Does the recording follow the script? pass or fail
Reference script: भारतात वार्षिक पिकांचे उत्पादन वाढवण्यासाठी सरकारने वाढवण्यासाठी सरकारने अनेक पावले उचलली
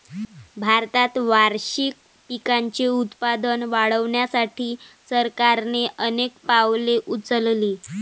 fail